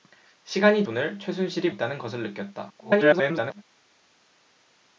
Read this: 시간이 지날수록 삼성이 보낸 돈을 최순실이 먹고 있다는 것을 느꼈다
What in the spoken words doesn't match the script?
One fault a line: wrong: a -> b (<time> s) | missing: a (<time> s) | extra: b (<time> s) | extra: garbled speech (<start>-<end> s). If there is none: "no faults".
missing: 지날수록 삼성이 보낸 (0.8 s)
missing: 먹고 (1.7 s)
extra: garbled speech (2.8-3.6 s)